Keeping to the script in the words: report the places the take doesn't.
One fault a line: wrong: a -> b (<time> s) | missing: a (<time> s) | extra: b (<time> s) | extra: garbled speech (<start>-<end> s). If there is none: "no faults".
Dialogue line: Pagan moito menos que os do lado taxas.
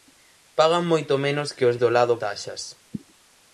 no faults